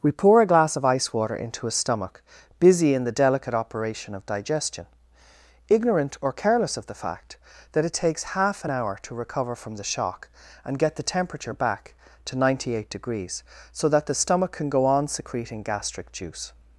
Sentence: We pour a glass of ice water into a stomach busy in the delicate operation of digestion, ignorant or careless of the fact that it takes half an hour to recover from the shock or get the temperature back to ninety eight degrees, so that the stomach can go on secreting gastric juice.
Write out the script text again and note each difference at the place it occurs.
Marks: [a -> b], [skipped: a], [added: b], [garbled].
We pour a glass of ice water into a stomach busy in the delicate operation of digestion, ignorant or careless of the fact that it takes half an hour to recover from the shock [or -> and] get the temperature back to ninety eight degrees, so that the stomach can go on secreting gastric juice.